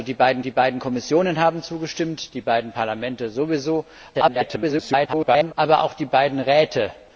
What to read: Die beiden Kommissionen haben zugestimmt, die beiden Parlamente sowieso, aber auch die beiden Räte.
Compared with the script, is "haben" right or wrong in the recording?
right